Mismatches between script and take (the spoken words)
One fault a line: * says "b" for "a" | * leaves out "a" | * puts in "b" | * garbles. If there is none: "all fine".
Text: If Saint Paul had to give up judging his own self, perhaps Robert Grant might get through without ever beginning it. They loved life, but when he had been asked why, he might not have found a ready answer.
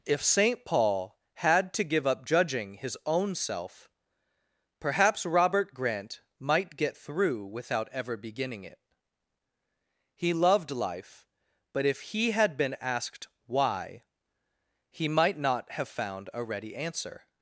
* says "He" for "They"
* says "if" for "when"